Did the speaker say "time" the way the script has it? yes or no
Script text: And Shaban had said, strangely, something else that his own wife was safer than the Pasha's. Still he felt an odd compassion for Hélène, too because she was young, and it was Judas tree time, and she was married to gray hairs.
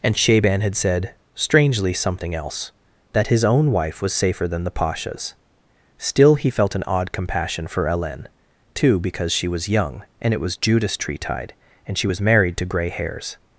no